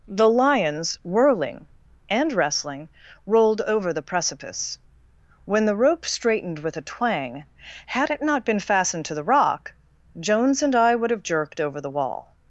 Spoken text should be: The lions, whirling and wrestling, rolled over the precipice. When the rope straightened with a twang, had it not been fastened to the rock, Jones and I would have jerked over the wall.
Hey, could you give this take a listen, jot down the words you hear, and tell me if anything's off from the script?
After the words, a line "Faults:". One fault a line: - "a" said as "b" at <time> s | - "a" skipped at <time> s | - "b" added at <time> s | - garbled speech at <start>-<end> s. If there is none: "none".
The lions, whirling and wrestling, rolled over the precipice. When the rope straightened with a twang, had it not been fastened to the rock, Jones and I would have jerked over the wall.
Faults:
none